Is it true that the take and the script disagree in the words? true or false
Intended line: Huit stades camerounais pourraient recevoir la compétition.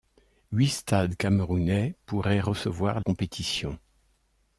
true